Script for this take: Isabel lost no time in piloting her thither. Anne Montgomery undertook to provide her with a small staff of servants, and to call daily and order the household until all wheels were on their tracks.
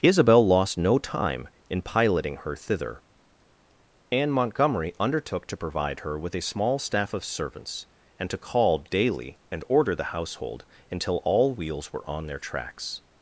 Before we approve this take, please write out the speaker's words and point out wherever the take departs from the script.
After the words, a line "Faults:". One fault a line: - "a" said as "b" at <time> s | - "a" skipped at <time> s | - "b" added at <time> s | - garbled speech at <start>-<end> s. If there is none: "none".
Isabel lost no time in piloting her thither. Anne Montgomery undertook to provide her with a small staff of servants, and to call daily and order the household until all wheels were on their tracks.
Faults:
none